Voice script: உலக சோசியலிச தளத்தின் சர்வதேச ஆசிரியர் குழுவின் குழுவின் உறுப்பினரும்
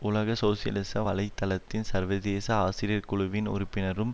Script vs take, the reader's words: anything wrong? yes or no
yes